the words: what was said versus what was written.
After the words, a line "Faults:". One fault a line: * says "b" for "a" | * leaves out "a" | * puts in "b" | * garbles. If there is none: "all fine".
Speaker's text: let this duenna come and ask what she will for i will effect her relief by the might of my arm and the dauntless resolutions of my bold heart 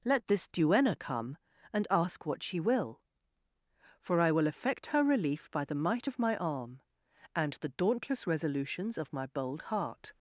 let this duenna come and ask what she will for i will effect her relief by the might of my arm and the dauntless resolutions of my bold heart
Faults:
all fine